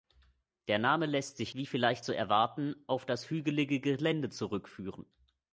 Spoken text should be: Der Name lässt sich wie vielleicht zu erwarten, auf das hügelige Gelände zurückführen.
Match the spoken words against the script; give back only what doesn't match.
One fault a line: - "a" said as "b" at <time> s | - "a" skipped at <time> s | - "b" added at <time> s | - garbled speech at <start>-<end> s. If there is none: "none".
none